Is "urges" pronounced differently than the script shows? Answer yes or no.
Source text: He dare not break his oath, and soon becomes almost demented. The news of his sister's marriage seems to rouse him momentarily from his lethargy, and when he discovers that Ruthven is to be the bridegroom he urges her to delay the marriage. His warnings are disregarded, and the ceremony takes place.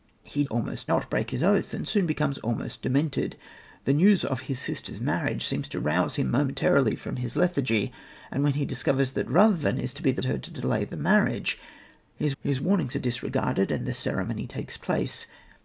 yes